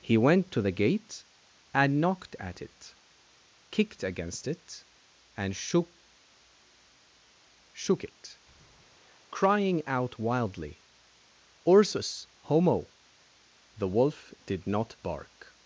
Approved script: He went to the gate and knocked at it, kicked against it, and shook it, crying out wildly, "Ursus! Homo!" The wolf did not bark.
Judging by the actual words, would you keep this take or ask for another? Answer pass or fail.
fail